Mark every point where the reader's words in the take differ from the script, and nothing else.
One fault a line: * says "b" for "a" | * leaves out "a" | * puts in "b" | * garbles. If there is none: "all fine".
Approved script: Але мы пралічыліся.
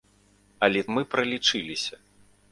all fine